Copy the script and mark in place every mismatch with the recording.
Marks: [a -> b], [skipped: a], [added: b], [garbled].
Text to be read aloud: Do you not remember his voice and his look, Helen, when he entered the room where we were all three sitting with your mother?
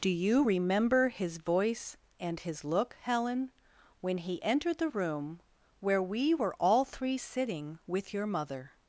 Do you [skipped: not] remember his voice and his look, Helen, when he entered the room where we were all three sitting with your mother?